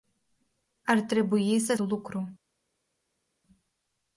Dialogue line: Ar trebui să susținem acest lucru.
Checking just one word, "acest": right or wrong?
wrong